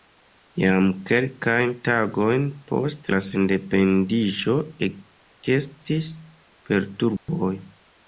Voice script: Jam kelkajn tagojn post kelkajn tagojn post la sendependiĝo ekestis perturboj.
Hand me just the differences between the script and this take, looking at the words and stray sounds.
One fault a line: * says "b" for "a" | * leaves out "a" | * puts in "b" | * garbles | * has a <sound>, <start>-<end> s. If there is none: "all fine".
* leaves out "kelkajn tagojn post"
* has a dropout, 7.2-7.3 s